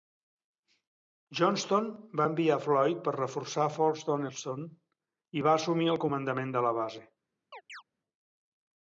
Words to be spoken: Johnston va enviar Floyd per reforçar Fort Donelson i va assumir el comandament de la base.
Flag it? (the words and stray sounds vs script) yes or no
yes